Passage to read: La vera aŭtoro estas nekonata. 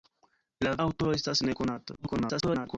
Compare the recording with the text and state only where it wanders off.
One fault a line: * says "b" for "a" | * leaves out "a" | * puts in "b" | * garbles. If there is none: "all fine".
* leaves out "vera"
* garbles